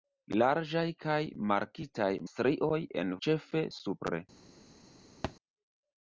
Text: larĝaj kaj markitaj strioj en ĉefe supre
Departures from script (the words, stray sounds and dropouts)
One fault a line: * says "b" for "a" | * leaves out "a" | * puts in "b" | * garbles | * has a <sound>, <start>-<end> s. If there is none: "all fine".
* has a thud, 5.2-5.4 s